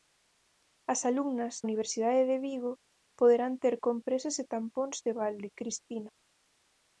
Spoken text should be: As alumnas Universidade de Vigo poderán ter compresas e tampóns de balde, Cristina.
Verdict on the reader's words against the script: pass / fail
pass